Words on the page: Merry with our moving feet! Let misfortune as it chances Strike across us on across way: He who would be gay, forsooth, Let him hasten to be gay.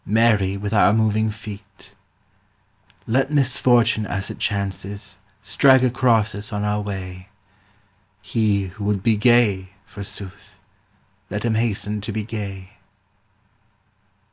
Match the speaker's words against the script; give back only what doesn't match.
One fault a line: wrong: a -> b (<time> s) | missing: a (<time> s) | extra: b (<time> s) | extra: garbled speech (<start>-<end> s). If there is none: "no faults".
wrong: across -> our (6.6 s)